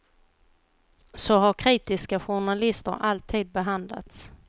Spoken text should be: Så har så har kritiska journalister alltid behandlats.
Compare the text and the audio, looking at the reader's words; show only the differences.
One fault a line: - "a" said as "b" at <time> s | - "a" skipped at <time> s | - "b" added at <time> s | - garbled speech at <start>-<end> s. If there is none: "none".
- "så har" skipped at 1.5 s